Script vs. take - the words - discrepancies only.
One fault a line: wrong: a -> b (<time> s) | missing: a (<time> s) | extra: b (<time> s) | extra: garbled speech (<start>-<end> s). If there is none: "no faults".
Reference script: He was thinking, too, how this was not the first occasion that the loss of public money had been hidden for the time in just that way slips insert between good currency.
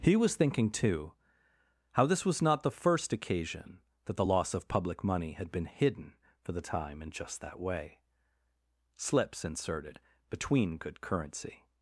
wrong: insert -> inserted (9.4 s)